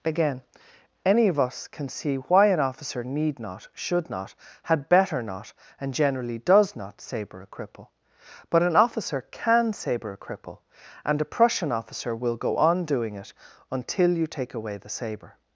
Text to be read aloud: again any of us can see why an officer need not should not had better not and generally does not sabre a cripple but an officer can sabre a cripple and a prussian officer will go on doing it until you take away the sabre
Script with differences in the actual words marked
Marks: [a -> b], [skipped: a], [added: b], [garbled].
again any of us can see why an officer need not should not had better not and generally does not sabre a cripple but an officer can sabre a cripple and a prussian officer will go on doing it until you take away the sabre